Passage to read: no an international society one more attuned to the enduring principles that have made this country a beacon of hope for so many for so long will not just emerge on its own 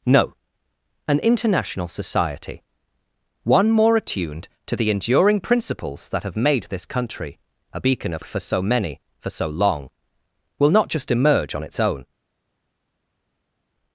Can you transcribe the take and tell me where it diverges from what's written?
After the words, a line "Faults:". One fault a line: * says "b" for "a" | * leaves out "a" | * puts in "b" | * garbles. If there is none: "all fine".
no an international society one more attuned to the enduring principles that have made this country a beacon of for so many for so long will not just emerge on its own
Faults:
* leaves out "hope"